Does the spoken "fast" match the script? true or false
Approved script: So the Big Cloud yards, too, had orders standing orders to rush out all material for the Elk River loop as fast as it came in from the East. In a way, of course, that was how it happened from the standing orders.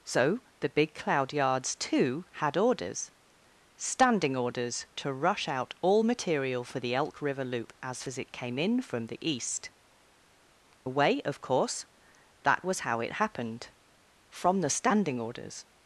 false